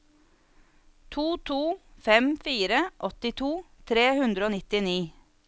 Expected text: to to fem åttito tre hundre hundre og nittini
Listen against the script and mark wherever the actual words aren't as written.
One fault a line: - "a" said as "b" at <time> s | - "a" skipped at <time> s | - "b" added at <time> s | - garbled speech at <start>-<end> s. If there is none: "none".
- "fire" added at 2.5 s
- "hundre" skipped at 4.5 s